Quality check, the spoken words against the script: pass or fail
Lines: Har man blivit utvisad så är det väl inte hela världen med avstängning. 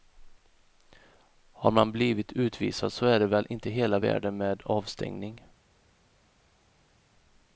pass